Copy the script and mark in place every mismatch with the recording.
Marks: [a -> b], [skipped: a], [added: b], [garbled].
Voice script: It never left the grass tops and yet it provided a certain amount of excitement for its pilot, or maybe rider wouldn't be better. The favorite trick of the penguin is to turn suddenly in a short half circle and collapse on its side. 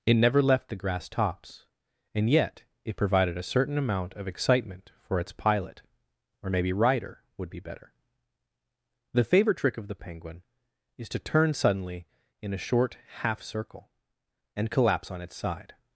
It never left the grass tops and yet it provided a certain amount of excitement for its pilot, or maybe rider [wouldn't -> would] be better. The favorite trick of the penguin is to turn suddenly in a short half circle and collapse on its side.